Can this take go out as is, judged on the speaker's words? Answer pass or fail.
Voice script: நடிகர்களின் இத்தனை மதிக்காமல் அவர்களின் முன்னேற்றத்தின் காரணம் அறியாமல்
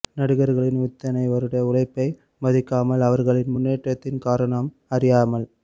fail